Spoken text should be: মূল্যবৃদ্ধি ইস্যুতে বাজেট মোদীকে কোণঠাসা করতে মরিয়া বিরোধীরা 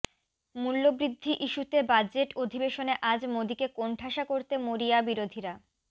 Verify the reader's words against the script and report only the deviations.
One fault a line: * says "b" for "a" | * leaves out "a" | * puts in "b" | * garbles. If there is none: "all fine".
* puts in "অধিবেশনে আজ"